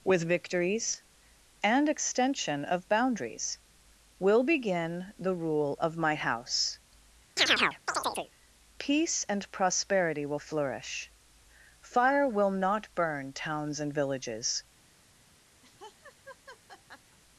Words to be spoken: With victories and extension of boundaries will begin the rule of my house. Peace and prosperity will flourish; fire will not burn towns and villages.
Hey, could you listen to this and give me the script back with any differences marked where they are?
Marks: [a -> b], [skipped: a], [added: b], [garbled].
With victories and extension of boundaries will begin the rule of my house. Peace and prosperity will flourish; fire will not burn towns and villages.